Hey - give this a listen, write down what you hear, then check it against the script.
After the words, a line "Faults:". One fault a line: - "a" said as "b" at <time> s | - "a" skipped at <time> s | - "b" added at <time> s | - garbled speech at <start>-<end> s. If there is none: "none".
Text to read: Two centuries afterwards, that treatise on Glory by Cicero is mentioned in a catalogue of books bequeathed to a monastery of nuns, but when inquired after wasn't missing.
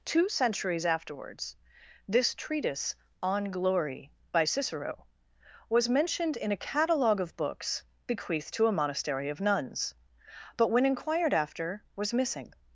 Two centuries afterwards, this treatise on Glory by Cicero was mentioned in a catalogue of books bequeathed to a monastery of nuns, but when inquired after was missing.
Faults:
- "that" said as "this" at 2.1 s
- "is" said as "was" at 5.7 s
- "wasn't" said as "was" at 11.9 s